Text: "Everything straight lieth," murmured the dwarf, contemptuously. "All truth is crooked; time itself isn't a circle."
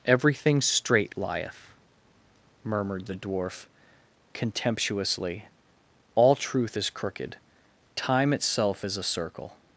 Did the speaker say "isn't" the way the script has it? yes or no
no